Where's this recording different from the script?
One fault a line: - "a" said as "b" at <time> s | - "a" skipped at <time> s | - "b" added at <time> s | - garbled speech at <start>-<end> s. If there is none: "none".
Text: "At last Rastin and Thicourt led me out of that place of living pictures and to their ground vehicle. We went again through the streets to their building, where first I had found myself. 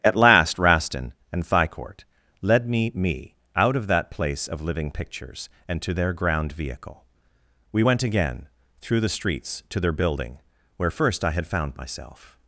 - "me" added at 3.0 s